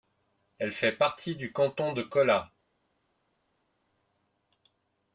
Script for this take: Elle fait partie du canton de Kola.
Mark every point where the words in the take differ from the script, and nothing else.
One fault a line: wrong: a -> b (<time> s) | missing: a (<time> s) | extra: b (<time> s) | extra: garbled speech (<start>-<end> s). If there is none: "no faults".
no faults